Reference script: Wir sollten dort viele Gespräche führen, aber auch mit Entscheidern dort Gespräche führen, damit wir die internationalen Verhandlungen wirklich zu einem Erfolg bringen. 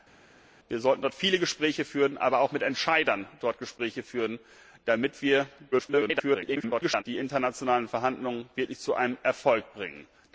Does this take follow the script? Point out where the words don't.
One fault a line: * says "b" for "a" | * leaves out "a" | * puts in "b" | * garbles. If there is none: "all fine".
* garbles